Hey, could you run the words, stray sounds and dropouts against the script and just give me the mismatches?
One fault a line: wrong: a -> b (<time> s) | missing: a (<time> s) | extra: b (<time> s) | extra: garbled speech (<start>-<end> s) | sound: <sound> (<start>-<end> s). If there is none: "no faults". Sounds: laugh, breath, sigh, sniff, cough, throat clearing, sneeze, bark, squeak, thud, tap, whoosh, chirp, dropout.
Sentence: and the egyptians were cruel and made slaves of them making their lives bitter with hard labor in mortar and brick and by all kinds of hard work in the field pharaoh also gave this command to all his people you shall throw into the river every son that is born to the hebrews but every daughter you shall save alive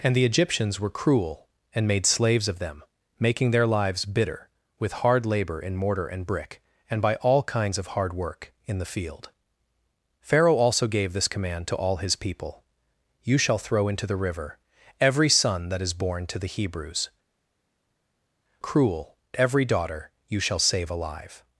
wrong: but -> cruel (18.6 s)